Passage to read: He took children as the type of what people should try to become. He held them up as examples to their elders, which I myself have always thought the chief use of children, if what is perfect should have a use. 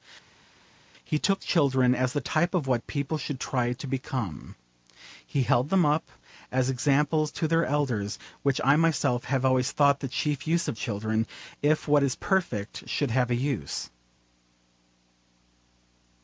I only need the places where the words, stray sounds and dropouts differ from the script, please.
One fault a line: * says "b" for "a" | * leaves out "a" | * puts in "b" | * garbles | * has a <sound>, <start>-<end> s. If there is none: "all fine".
all fine